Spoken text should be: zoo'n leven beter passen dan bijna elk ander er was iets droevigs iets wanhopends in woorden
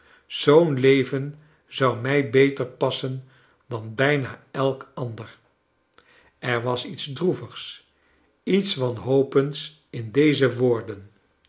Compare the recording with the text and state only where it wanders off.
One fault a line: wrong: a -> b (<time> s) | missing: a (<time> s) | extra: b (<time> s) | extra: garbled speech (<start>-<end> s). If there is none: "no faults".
extra: zou mij (1.7 s)
extra: deze (10.1 s)